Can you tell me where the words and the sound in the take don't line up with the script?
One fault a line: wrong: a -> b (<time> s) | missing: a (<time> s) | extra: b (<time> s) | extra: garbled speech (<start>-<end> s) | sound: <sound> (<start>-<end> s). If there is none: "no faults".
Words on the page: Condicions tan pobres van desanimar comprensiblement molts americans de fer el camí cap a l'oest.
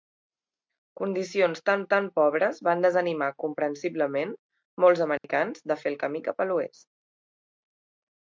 extra: tan (1.9 s)
sound: dropout (5.2-5.2 s)